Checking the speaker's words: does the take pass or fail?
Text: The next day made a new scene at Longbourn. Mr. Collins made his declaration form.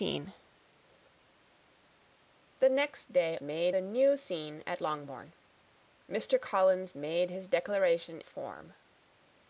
pass